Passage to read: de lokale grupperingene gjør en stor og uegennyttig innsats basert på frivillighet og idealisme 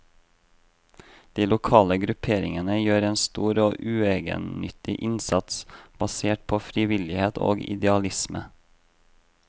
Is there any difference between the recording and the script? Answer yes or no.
no